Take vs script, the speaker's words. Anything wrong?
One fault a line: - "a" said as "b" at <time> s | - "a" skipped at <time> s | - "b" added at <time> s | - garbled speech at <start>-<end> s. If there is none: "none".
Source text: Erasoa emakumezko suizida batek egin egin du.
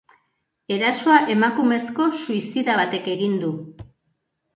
- "egin" skipped at 3.4 s